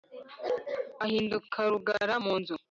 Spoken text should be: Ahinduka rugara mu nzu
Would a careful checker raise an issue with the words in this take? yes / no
no